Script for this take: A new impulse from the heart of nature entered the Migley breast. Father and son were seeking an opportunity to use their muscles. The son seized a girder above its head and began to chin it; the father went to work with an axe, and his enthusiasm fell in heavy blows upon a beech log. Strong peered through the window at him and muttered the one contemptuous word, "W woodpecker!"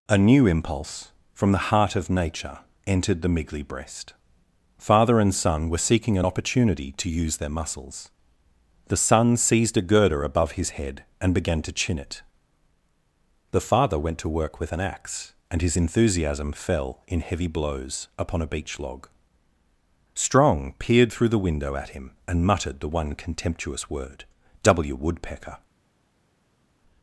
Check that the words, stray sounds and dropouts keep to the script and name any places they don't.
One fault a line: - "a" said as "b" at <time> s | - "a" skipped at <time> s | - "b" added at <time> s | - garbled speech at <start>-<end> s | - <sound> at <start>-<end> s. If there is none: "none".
- "its" said as "his" at 10.5 s